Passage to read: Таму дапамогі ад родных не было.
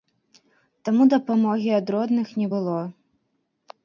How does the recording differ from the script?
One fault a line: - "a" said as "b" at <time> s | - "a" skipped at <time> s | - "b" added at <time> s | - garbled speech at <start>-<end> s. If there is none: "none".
none